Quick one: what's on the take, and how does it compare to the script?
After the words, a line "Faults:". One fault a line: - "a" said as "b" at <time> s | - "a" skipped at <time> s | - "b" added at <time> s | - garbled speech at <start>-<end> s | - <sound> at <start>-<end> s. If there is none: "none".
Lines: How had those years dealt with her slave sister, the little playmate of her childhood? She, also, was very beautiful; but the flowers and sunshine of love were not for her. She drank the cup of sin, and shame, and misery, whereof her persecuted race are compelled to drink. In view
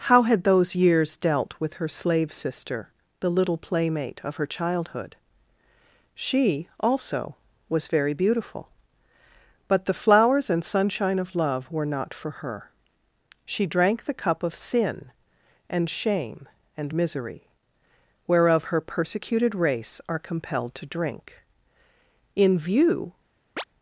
How had those years dealt with her slave sister, the little playmate of her childhood? She, also, was very beautiful; but the flowers and sunshine of love were not for her. She drank the cup of sin, and shame, and misery, whereof her persecuted race are compelled to drink. In view
Faults:
- chirp at 23.6-23.6 s